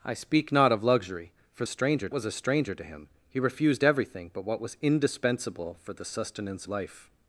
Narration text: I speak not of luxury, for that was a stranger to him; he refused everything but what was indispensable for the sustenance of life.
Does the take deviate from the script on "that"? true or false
true